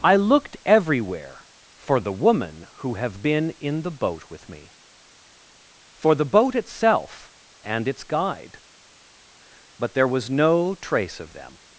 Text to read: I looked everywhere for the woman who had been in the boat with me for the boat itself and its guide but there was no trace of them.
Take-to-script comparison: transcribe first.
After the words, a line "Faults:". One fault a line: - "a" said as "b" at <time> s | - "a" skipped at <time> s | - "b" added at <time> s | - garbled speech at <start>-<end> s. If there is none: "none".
I looked everywhere for the woman who have been in the boat with me for the boat itself and its guide but there was no trace of them.
Faults:
- "had" said as "have" at 3.0 s